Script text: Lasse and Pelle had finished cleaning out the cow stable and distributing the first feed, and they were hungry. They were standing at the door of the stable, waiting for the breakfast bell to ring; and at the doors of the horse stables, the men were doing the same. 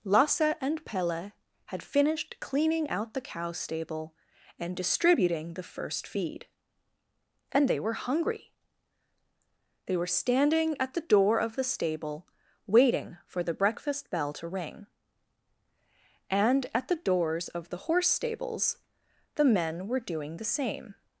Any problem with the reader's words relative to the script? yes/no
no